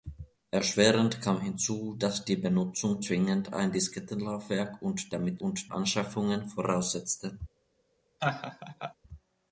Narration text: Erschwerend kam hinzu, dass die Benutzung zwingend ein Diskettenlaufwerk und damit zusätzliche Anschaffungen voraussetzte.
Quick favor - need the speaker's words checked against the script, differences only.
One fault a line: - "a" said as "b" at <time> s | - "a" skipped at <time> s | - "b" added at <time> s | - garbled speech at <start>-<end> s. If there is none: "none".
- "zusätzliche" said as "und" at 5.4 s